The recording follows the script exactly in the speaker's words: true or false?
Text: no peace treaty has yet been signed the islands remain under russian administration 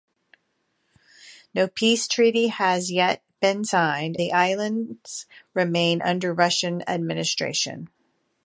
true